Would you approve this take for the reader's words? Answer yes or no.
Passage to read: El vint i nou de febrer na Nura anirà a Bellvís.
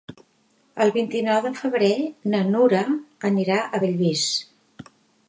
yes